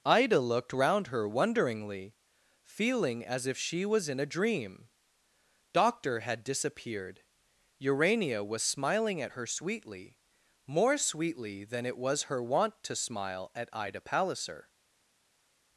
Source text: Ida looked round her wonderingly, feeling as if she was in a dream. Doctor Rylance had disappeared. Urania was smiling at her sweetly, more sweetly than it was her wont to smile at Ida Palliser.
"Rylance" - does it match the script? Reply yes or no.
no